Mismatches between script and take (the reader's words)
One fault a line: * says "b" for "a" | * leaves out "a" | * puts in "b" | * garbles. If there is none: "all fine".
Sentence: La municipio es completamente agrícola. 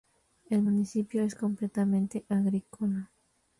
* says "El" for "La"